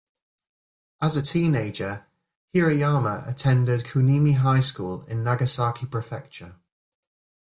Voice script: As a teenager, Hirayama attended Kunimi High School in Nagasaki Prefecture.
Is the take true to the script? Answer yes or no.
yes